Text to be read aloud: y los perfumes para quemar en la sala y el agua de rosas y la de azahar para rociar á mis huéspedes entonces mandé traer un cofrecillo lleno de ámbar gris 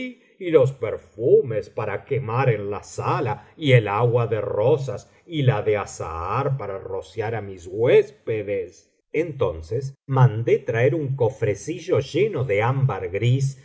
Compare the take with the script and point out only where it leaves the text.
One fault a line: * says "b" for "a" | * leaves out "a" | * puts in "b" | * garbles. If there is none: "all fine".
all fine